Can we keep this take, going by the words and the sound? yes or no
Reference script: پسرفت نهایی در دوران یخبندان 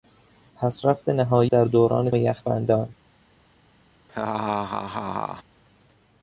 no